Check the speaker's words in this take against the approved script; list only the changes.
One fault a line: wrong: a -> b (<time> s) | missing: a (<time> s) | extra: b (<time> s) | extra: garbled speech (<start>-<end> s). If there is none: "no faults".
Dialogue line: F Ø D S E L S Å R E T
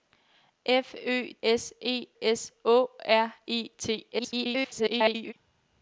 missing: D (1.3 s)
missing: L (2.1 s)
extra: garbled speech (4.1-5.3 s)